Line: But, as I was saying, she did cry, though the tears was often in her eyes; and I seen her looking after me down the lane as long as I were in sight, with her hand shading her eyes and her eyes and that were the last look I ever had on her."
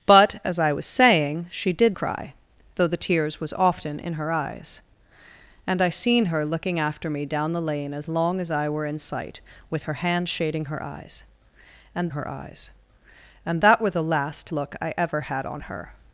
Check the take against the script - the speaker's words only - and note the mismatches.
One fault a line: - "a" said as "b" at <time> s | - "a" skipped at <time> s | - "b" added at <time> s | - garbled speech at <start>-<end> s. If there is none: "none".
none